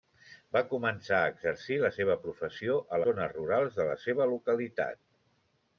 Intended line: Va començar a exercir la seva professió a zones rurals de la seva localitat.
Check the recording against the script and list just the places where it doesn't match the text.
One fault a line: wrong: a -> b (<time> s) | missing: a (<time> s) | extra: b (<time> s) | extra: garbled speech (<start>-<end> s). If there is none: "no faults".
no faults